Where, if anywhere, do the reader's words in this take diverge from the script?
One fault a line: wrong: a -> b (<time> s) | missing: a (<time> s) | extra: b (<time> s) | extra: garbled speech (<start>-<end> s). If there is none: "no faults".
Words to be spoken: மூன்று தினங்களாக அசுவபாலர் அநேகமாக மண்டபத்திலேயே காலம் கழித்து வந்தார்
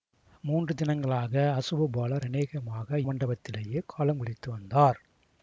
no faults